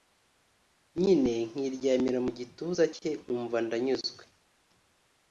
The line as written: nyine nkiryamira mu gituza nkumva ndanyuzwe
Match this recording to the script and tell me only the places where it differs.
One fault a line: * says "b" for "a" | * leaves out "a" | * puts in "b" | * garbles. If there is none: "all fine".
* puts in "cye"